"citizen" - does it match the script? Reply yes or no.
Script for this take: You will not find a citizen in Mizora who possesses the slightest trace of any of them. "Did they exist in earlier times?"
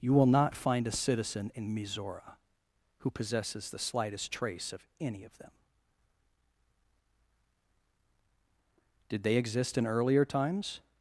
yes